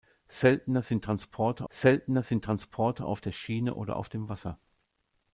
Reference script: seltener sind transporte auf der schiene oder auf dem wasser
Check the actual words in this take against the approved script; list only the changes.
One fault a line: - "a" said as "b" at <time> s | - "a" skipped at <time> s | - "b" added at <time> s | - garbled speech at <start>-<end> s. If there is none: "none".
- "seltener sind transporte" added at 1.7 s